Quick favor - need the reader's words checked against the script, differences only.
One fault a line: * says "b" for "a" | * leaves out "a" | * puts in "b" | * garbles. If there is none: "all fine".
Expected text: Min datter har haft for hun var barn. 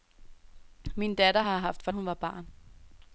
all fine